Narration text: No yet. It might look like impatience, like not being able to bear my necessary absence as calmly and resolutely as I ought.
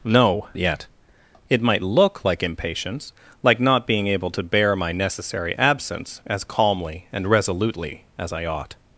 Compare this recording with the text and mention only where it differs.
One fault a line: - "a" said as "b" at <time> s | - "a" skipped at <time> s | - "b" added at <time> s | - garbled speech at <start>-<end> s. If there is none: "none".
none